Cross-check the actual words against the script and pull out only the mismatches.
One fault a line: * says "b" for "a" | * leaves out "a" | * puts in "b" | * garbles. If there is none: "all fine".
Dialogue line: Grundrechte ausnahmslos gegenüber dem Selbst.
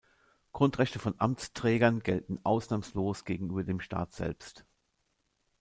* puts in "von Amtsträgern gelten"
* puts in "Staat"